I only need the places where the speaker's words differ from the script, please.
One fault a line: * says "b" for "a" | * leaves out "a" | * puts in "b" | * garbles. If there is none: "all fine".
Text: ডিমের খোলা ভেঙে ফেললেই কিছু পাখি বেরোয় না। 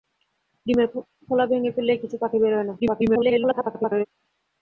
* garbles